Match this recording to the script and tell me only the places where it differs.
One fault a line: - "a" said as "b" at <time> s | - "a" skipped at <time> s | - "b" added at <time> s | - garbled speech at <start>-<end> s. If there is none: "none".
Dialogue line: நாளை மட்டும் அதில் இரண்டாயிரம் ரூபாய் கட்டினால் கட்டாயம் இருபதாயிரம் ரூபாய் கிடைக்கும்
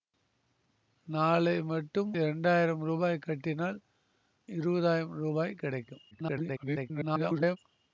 - "அதில்" skipped at 2.1 s
- "கட்டாயம்" skipped at 3.8 s
- garbled speech at 6.1-7.6 s